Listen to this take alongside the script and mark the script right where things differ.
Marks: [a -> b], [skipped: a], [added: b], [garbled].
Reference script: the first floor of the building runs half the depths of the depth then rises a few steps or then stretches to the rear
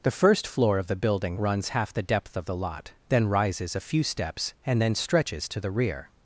the first floor of the building runs half the [depths -> depth] of the [depth -> lot] then rises a few steps [or -> and] then stretches to the rear